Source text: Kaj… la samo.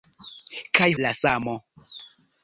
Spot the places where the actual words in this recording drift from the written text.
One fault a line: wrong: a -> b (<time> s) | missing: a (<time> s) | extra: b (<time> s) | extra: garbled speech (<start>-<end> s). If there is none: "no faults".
no faults